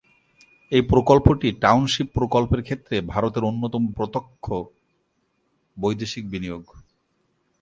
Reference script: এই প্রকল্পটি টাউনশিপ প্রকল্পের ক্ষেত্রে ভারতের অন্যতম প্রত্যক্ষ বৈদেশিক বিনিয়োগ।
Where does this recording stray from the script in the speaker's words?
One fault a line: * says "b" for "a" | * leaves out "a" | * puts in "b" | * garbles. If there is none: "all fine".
all fine